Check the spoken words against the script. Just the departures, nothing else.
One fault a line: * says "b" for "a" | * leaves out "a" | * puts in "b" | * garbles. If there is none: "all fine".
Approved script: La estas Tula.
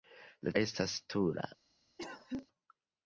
all fine